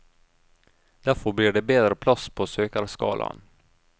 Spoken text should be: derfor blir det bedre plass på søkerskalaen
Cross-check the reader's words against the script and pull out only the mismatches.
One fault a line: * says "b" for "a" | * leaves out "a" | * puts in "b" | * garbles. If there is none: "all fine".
all fine